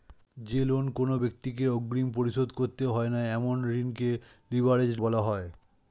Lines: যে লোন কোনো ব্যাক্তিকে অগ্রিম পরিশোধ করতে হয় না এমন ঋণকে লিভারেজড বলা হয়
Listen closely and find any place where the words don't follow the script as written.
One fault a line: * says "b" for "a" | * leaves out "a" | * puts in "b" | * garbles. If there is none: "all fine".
all fine